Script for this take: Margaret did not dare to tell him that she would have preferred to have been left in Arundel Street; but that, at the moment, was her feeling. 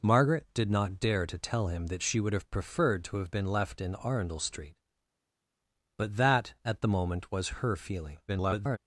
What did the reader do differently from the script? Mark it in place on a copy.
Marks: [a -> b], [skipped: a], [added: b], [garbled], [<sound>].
Margaret did not dare to tell him that she would have preferred to have been left in Arundel Street; but that, at the moment, was her feeling. [garbled]